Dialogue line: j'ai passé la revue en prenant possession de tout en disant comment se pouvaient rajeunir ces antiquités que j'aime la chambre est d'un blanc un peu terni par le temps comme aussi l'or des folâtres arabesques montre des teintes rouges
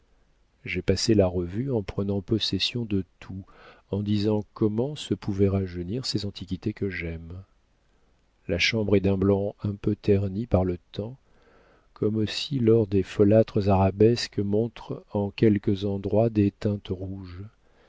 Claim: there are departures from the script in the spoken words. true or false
true